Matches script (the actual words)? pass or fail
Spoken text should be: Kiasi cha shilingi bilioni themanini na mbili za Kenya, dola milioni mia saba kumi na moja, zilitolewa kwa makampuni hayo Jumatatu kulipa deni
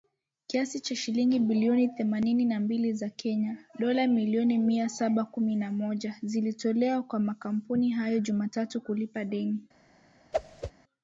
pass